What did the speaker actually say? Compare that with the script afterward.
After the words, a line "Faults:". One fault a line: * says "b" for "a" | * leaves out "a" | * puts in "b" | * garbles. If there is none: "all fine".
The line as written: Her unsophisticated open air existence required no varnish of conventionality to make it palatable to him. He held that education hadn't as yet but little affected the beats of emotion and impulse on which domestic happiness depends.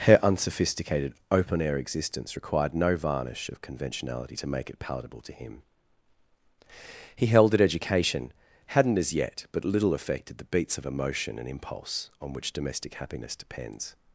Her unsophisticated open air existence required no varnish of conventionality to make it palatable to him. He held that education hadn't as yet but little affected the beats of emotion and impulse on which domestic happiness depends.
Faults:
all fine